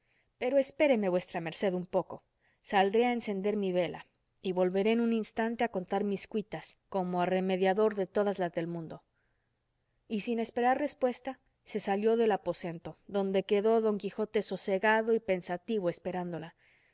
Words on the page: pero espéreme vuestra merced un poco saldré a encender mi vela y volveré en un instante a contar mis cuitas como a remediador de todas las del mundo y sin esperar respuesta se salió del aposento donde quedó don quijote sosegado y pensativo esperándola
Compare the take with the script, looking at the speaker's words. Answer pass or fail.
pass